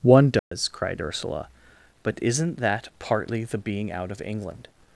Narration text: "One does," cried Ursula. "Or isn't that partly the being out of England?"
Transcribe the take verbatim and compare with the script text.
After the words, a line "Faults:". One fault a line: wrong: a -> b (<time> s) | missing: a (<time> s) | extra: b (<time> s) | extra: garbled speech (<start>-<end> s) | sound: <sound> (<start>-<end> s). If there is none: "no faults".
"One does," cried Ursula. "But isn't that partly the being out of England?"
Faults:
sound: dropout (0.4-0.5 s)
wrong: Or -> But (2.0 s)